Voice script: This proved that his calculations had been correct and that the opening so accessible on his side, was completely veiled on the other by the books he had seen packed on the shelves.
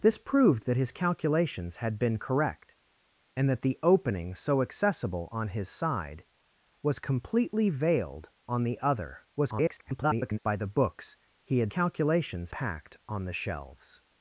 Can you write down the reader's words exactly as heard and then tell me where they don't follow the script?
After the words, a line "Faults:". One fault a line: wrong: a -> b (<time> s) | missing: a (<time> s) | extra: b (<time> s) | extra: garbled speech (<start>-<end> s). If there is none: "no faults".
This proved that his calculations had been correct and that the opening so accessible on his side, was completely veiled on the other [garbled] by the books he had calculations packed on the shelves.
Faults:
extra: garbled speech (9.4-10.4 s)
wrong: seen -> calculations (11.7 s)